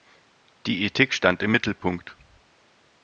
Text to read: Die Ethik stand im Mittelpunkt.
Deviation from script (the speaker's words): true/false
false